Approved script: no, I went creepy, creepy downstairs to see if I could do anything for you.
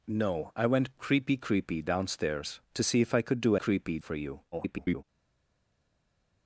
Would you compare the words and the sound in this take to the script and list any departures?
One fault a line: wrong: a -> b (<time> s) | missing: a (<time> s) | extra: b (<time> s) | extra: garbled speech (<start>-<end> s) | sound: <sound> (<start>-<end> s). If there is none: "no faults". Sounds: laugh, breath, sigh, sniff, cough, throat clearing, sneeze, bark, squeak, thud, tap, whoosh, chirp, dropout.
wrong: anything -> creepy (3.5 s)
extra: garbled speech (4.5-5.0 s)